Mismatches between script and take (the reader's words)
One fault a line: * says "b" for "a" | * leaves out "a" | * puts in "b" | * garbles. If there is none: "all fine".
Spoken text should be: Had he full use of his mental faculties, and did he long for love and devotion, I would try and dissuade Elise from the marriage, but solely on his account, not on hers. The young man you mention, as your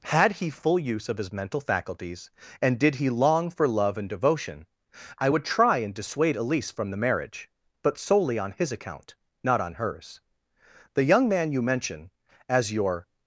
all fine